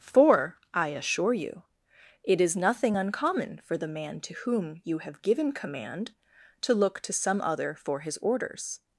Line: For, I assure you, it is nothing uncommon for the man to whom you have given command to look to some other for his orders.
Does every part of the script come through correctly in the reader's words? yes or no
yes